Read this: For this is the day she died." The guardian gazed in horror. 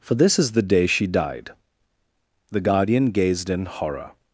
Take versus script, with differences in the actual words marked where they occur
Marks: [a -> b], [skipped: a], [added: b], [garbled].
For this is the day she died." The guardian gazed in horror.